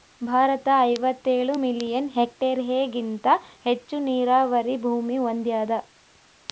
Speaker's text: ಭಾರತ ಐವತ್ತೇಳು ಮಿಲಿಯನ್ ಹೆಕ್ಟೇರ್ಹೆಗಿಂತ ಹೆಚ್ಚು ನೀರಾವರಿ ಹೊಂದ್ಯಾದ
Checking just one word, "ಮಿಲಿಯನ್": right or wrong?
right